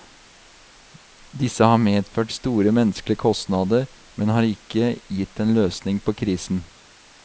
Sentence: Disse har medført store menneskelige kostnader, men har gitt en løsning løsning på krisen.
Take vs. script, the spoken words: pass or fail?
fail